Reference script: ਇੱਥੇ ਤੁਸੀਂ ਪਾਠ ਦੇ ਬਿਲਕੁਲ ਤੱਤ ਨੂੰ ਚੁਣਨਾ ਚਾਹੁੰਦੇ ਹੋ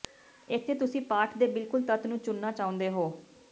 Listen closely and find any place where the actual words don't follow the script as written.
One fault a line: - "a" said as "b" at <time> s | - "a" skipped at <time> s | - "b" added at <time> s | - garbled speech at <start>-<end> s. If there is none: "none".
none